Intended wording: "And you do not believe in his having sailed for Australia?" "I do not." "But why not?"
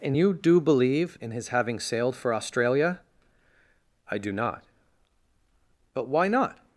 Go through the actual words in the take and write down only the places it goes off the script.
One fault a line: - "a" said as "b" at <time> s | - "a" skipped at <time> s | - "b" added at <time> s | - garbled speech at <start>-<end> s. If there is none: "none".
- "not" skipped at 0.6 s